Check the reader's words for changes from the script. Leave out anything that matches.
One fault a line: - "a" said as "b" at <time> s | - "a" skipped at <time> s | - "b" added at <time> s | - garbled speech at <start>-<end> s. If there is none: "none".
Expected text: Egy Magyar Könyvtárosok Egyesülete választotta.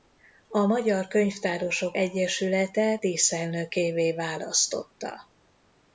- "Egy" said as "A" at 0.5 s
- "díszelnökévé" added at 2.9 s